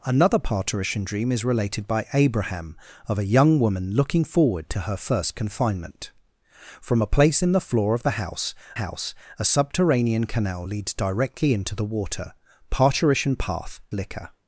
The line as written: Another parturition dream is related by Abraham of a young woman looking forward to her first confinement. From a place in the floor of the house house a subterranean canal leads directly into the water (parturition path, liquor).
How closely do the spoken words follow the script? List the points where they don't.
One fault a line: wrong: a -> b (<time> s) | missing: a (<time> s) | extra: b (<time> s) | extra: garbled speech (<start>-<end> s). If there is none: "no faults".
no faults